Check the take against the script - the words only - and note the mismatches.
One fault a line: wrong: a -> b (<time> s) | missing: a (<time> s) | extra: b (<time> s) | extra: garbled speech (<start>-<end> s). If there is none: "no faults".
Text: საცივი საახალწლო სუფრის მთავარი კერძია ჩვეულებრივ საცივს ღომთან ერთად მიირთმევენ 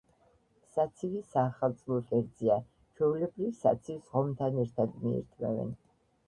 missing: სუფრის მთავარი (2.0 s)